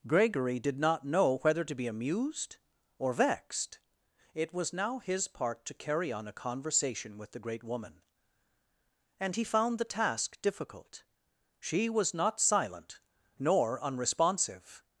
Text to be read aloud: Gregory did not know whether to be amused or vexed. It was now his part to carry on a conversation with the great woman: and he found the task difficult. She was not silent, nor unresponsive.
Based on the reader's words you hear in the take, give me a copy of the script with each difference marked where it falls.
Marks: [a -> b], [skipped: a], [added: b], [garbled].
Gregory did not know whether to be amused or vexed. It was now his part to carry on a conversation with the great woman: and he found the task difficult. She was not silent, nor unresponsive.